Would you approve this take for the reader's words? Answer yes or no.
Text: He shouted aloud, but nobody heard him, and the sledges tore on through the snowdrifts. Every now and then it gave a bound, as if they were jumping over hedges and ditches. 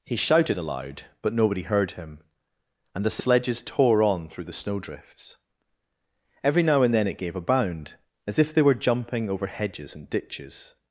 yes